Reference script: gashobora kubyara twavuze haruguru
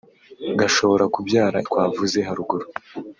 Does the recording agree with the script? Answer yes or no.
yes